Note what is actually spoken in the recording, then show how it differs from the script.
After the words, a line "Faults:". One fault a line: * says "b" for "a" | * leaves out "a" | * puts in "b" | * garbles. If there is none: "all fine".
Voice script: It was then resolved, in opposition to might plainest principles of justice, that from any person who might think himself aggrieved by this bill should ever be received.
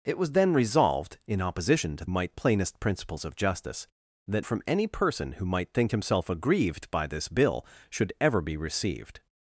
It was then resolved, in opposition to might plainest principles of justice, that from any person who might think himself aggrieved by this bill should ever be received.
Faults:
all fine